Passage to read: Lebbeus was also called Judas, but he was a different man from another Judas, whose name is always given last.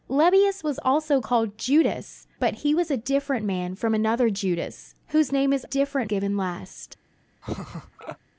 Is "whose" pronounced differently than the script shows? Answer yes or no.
no